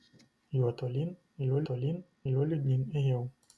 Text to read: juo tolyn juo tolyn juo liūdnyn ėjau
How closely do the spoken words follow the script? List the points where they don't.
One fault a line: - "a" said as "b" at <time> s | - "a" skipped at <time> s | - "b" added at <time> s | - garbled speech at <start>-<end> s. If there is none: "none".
none